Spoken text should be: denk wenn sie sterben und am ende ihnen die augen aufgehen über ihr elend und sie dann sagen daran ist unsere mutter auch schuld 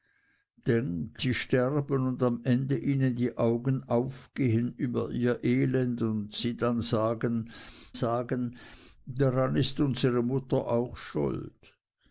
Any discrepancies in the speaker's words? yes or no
yes